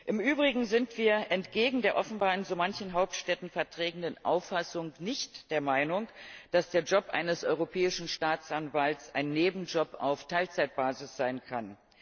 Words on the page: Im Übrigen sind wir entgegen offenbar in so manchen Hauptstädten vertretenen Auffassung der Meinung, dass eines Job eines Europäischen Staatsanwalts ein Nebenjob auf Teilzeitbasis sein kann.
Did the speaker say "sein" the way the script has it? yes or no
yes